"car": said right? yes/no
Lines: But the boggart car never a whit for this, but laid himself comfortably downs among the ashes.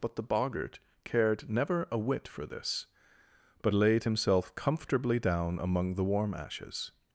no